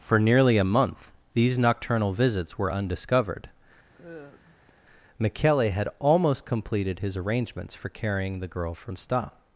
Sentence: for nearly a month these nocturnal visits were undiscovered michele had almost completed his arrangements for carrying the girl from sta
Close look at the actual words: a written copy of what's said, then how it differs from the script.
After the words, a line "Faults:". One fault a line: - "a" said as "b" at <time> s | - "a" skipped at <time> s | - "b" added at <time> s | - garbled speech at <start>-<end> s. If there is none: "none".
for nearly a month these nocturnal visits were undiscovered michele had almost completed his arrangements for carrying the girl from sta
Faults:
none